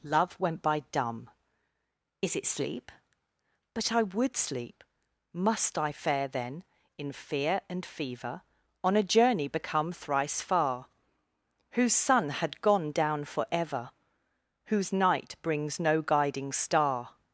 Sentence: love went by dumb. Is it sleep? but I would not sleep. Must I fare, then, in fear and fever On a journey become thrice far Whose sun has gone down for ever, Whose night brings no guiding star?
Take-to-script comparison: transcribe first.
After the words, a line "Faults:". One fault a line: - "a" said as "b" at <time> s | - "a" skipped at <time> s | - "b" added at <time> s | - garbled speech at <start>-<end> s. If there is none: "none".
love went by dumb. Is it sleep? but I would sleep. Must I fare, then, in fear and fever On a journey become thrice far Whose sun had gone down for ever, Whose night brings no guiding star?
Faults:
- "not" skipped at 4.4 s
- "has" said as "had" at 12.3 s